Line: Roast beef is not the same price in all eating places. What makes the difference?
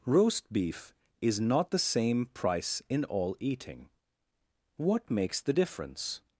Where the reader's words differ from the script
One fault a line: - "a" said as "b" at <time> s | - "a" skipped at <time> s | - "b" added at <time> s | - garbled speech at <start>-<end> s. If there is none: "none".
- "places" skipped at 3.9 s